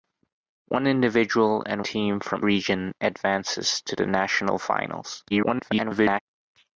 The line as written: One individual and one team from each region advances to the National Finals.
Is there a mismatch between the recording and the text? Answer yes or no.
yes